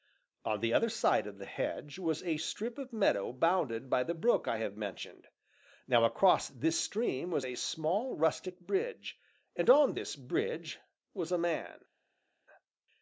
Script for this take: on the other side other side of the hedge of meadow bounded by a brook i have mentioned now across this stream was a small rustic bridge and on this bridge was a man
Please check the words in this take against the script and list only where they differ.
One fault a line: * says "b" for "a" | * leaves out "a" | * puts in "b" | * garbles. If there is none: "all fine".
* leaves out "other side"
* puts in "was a strip"
* says "the" for "a"